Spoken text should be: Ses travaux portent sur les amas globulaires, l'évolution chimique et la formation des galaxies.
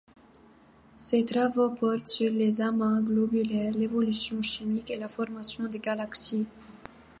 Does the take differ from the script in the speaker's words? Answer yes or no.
no